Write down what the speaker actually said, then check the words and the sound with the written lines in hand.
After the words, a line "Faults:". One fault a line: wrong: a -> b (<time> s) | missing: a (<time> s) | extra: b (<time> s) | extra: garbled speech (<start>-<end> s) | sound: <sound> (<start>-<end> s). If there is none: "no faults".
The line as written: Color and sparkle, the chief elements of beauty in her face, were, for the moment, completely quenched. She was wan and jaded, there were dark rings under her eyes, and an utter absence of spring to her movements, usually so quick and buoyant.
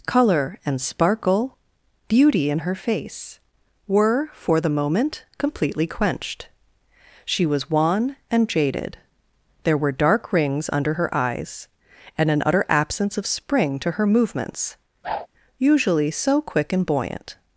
Color and sparkle, beauty in her face, were, for the moment, completely quenched. She was wan and jaded, there were dark rings under her eyes, and an utter absence of spring to her movements, usually so quick and buoyant.
Faults:
missing: the chief elements of (1.6 s)
sound: whoosh (15.0-15.3 s)